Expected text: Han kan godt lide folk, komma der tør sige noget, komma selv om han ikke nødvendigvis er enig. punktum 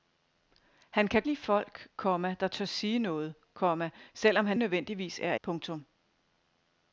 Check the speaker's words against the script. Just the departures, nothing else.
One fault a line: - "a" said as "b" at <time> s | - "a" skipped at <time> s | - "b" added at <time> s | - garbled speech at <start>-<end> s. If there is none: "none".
- "godt" skipped at 1.2 s
- "ikke" skipped at 4.6 s
- "enig" skipped at 5.3 s